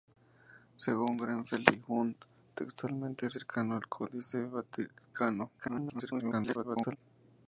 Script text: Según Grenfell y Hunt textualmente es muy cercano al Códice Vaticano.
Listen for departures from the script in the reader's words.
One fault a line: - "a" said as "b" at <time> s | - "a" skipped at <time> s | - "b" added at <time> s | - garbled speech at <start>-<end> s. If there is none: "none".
- "muy" skipped at 3.3 s
- garbled speech at 5.6-7.0 s